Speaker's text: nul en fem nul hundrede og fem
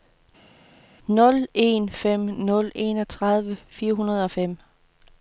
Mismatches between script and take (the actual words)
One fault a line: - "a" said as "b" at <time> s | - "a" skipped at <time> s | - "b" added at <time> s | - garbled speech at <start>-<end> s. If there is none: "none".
- "enogtredive fire" added at 2.7 s